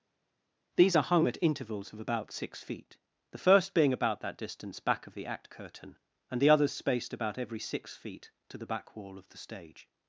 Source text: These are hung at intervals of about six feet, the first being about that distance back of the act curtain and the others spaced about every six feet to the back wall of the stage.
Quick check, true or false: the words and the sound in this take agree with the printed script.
true